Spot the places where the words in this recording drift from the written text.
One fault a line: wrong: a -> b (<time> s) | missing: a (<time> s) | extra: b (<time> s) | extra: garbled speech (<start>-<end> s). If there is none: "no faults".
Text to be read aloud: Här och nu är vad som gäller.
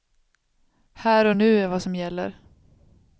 no faults